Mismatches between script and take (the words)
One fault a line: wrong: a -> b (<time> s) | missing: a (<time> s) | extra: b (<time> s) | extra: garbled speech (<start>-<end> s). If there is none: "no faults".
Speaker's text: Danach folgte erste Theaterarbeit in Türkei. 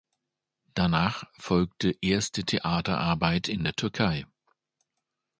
extra: der (3.6 s)